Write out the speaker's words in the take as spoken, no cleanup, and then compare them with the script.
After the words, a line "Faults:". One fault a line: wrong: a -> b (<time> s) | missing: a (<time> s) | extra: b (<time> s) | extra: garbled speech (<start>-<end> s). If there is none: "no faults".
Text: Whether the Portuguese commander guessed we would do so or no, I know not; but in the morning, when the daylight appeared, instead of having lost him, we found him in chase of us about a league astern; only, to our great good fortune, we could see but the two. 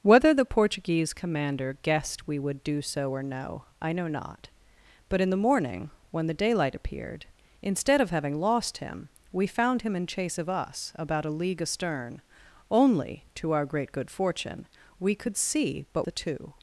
Whether the Portuguese commander guessed we would do so or no, I know not; but in the morning, when the daylight appeared, instead of having lost him, we found him in chase of us about a league astern; only, to our great good fortune, we could see but the two.
Faults:
no faults